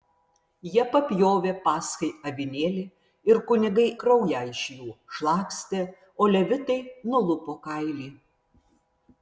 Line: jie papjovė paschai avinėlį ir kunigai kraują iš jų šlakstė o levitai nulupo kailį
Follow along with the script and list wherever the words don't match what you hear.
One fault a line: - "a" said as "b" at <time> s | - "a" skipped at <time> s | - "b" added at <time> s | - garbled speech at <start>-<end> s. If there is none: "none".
none